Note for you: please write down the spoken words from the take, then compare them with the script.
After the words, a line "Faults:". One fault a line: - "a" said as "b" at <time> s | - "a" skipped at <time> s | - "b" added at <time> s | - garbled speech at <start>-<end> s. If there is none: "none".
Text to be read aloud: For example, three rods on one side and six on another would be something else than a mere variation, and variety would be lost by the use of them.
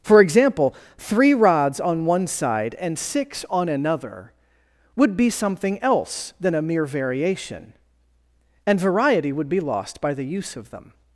For example, three rods on one side and six on another would be something else than a mere variation, and variety would be lost by the use of them.
Faults:
none